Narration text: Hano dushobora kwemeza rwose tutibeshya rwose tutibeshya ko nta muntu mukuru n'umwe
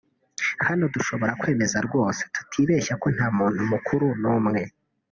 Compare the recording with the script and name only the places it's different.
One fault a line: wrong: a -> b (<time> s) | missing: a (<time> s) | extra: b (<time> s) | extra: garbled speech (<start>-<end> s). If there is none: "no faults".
missing: rwose tutibeshya (2.9 s)